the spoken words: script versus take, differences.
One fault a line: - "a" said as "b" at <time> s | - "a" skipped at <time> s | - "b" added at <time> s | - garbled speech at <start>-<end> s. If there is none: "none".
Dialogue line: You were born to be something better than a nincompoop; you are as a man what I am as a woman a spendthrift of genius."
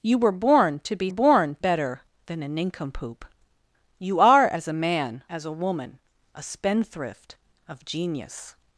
- "something" said as "born" at 1.1 s
- "what I am" skipped at 5.2 s